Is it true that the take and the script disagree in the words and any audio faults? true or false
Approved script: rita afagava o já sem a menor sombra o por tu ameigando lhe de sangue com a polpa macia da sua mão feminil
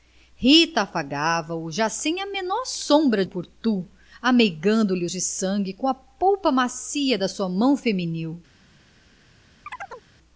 true